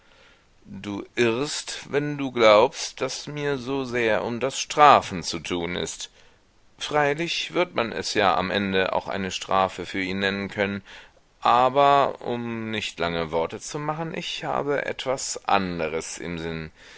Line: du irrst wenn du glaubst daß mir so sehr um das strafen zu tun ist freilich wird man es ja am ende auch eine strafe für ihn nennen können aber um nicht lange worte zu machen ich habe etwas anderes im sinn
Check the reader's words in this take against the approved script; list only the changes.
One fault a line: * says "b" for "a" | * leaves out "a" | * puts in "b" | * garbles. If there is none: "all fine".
all fine